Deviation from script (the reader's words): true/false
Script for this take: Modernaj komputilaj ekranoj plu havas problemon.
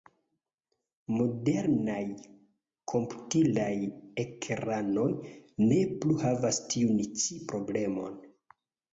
true